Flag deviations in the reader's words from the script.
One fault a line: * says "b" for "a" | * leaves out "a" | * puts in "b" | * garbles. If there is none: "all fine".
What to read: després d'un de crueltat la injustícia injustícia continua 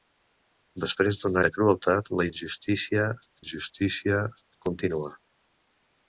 all fine